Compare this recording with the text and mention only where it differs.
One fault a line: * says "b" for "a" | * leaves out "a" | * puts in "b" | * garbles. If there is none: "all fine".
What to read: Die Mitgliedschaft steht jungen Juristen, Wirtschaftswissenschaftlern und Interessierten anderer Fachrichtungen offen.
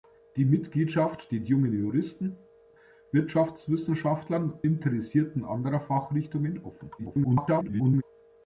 * leaves out "und"
* garbles